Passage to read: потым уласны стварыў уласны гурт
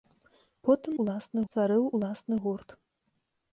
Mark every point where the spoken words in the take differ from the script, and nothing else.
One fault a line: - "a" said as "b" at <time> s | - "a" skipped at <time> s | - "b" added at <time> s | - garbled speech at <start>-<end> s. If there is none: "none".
none